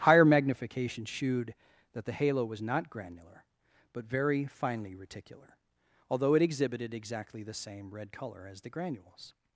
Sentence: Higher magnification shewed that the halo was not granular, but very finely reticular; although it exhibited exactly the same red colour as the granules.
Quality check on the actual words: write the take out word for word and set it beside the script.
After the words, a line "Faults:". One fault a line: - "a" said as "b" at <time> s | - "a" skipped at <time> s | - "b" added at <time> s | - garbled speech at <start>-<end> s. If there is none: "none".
Higher magnification shewed that the halo was not granular, but very finely reticular; although it exhibited exactly the same red colour as the granules.
Faults:
none